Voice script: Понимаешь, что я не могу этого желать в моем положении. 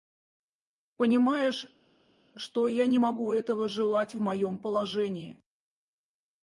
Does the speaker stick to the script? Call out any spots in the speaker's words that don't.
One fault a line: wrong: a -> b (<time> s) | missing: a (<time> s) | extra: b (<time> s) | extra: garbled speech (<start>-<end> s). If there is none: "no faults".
no faults